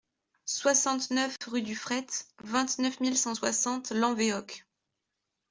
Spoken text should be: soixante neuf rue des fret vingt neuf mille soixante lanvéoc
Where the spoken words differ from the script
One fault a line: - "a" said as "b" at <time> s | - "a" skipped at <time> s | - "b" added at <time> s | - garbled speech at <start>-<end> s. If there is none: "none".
- "des" said as "du" at 1.6 s
- "cent" added at 3.2 s